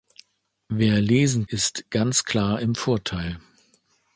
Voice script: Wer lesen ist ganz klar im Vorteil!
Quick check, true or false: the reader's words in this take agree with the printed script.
true